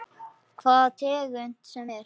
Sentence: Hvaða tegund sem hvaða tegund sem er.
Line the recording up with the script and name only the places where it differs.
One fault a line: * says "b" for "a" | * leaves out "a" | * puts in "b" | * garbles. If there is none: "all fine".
* leaves out "hvaða tegund sem"